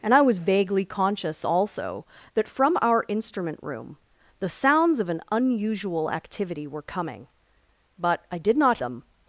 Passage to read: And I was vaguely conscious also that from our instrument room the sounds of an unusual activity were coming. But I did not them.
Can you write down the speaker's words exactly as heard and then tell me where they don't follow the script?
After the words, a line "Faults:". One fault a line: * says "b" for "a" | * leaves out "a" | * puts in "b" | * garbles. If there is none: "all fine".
And I was vaguely conscious also that from our instrument room the sounds of an unusual activity were coming. But I did not them.
Faults:
all fine